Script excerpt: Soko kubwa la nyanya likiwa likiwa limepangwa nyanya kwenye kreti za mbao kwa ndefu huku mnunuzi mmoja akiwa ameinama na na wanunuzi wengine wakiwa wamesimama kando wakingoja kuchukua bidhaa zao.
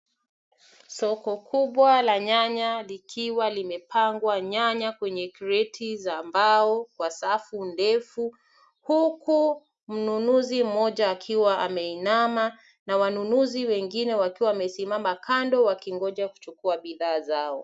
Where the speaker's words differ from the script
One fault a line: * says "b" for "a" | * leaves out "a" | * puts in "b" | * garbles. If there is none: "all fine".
* leaves out "likiwa"
* puts in "safu"
* leaves out "na"